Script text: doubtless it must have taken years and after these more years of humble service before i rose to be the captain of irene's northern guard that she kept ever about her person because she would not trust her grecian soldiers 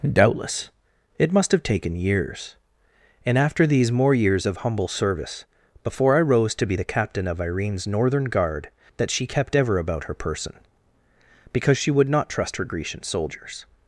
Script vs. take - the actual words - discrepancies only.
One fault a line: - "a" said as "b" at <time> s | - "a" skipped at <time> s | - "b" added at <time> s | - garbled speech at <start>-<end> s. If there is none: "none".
none